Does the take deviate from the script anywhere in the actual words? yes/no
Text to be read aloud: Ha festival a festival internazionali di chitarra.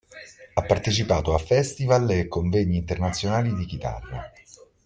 yes